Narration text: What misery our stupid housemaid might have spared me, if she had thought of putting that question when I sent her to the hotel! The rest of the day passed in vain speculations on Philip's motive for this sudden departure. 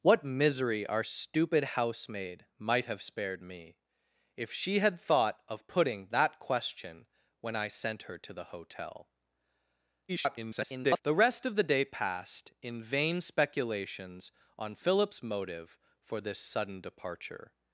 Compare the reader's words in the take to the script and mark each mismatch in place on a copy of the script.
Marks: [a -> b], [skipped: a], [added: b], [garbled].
What misery our stupid housemaid might have spared me, if she had thought of putting that question when I sent her to the hotel! [garbled] The rest of the day passed in vain speculations on Philip's motive for this sudden departure.